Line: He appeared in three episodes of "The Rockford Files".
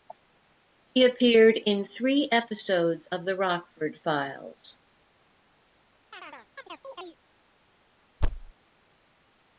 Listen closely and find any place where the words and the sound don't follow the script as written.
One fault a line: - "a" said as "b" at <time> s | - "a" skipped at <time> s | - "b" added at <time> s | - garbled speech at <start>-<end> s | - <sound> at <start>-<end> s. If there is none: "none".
- chirp at 6.1-7.2 s
- thud at 8.2-8.5 s